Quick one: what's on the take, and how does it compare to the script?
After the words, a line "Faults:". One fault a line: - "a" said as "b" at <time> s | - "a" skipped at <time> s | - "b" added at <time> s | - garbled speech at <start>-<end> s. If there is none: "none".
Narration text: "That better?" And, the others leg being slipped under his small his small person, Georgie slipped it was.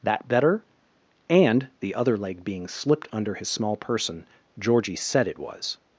"That better?" And, the other leg being slipped under his small person, Georgie said it was.
Faults:
- "others" said as "other" at 1.9 s
- "his small" skipped at 3.8 s
- "slipped" said as "said" at 5.0 s